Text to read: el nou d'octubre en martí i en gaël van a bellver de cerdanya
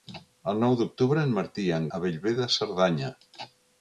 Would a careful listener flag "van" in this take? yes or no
yes